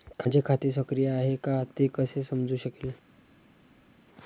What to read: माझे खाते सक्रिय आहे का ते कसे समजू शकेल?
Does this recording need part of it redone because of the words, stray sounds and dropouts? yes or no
no